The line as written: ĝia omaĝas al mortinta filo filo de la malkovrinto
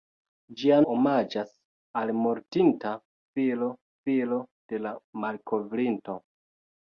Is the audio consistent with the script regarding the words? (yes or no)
yes